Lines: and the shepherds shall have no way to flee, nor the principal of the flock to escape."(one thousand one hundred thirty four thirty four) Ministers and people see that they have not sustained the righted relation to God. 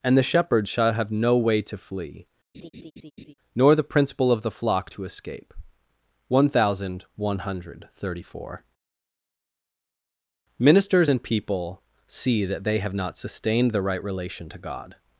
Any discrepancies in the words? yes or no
yes